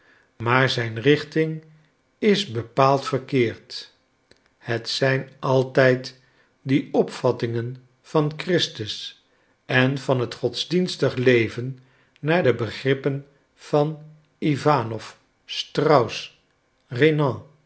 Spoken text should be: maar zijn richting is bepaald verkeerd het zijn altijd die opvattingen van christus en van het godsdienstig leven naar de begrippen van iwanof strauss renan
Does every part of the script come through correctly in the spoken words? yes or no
yes